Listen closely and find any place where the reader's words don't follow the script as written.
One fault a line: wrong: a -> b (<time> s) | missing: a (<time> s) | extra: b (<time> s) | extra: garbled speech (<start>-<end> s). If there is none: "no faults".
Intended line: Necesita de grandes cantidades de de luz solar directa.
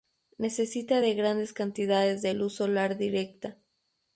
missing: de (2.3 s)